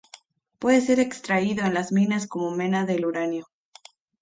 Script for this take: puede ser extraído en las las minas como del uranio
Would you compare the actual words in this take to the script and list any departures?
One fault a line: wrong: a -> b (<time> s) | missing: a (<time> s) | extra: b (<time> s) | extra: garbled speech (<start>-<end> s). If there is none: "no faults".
missing: las (1.9 s)
extra: mena (2.5 s)